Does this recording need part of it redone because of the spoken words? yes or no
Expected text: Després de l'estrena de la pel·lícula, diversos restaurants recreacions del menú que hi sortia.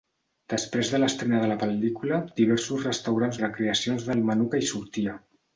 no